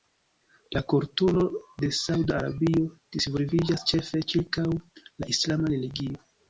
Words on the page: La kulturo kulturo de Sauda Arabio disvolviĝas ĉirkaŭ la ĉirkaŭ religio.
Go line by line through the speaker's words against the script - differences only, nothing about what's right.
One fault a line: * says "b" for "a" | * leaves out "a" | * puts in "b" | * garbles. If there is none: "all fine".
* leaves out "kulturo"
* puts in "ĉefe"
* says "islama" for "ĉirkaŭ"